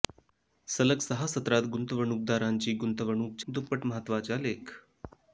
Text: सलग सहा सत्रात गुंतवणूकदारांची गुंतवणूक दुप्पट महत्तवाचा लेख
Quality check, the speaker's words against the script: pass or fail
pass